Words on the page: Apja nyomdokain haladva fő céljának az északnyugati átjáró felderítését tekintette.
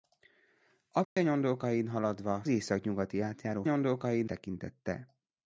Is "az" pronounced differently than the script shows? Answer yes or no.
yes